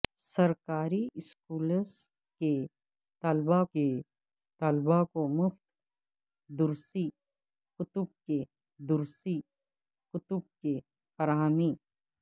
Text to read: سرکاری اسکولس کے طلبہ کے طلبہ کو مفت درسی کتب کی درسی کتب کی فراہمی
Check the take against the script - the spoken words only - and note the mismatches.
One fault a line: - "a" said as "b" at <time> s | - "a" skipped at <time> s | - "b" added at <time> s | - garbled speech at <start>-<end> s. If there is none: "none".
none